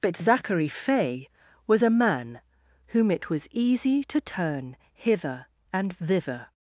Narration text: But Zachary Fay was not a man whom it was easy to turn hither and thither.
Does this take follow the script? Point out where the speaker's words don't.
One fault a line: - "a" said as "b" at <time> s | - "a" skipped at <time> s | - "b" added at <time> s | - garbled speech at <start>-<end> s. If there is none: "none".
- "not" skipped at 1.8 s